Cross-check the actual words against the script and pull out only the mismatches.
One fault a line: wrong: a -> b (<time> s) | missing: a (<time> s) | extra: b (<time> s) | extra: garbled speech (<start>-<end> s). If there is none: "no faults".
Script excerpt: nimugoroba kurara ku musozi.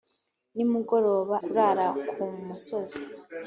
no faults